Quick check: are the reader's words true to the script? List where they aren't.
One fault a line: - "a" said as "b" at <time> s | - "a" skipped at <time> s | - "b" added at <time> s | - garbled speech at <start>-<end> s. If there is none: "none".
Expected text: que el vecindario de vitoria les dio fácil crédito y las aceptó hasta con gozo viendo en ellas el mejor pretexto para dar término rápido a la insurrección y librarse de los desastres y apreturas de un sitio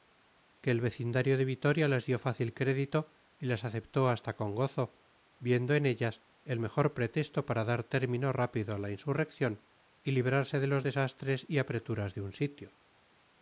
none